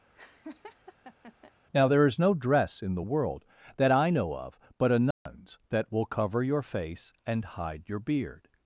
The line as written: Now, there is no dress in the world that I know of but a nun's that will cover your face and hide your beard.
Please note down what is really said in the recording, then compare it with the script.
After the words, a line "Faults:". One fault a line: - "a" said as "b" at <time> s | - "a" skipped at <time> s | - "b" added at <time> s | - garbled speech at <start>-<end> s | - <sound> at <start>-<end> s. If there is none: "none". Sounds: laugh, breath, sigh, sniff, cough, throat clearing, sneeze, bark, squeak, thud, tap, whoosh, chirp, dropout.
Now, there is no dress in the world that I know of but a nun's that will cover your face and hide your beard.
Faults:
- laugh at 0.1-1.5 s
- dropout at 5.1-5.3 s